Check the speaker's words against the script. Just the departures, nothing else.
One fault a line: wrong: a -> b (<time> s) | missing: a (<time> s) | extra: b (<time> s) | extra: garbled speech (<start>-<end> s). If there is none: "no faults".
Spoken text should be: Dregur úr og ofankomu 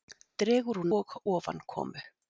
no faults